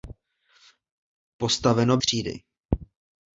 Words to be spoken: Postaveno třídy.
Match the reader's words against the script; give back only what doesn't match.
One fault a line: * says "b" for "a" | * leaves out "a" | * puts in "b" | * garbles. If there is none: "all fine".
all fine